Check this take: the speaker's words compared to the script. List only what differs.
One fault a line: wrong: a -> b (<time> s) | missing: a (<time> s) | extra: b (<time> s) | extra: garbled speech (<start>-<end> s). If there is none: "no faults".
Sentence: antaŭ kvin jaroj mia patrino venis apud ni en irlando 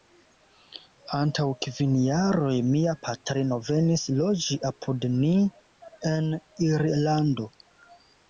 extra: loĝi (4.2 s)